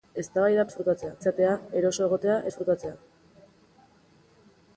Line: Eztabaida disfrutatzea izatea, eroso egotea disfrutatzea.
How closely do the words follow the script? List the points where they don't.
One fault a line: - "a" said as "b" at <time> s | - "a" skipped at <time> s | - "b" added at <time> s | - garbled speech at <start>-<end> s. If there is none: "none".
none